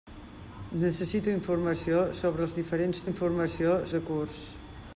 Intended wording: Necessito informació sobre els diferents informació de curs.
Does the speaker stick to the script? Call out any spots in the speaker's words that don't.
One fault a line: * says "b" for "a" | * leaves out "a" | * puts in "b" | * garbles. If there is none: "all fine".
all fine